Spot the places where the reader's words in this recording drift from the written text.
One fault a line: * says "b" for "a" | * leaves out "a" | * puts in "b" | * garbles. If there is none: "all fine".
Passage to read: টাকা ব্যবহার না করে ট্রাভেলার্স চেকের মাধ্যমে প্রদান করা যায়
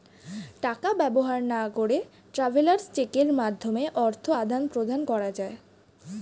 * puts in "অর্থ আদান"